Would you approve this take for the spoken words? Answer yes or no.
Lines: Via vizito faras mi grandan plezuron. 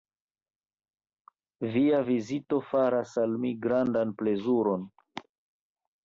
no